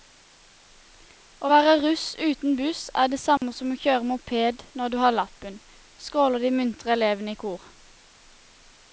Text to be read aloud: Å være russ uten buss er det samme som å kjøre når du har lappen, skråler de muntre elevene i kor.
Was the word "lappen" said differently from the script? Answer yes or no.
no